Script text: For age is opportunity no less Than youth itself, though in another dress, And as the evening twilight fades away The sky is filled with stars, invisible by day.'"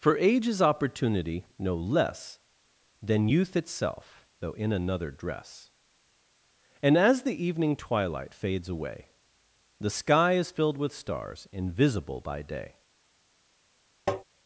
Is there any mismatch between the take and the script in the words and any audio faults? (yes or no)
yes